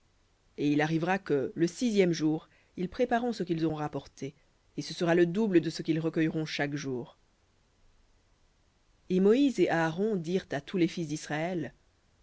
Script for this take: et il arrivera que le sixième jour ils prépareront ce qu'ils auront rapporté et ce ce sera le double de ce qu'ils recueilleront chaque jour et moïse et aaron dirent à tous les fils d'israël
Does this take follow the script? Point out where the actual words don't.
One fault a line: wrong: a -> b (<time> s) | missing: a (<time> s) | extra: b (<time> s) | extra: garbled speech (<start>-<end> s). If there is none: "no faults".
missing: ce (4.9 s)